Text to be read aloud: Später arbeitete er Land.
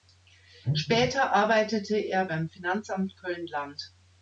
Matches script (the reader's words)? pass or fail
fail